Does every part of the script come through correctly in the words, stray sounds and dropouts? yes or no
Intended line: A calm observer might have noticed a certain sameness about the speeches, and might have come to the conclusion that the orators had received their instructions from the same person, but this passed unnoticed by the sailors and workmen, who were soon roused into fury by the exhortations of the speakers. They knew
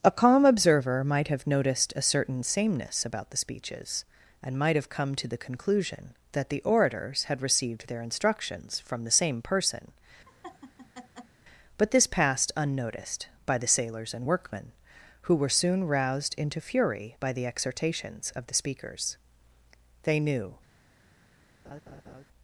no